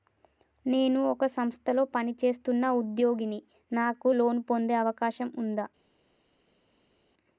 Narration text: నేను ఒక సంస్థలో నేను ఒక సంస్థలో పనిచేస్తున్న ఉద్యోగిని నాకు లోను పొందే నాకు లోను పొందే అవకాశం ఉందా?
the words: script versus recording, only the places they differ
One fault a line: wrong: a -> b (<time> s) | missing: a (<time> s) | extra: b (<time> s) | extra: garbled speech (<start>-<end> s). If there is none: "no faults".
missing: నేను ఒక సంస్థలో (1.8 s)
missing: నాకు లోను పొందే (4.7 s)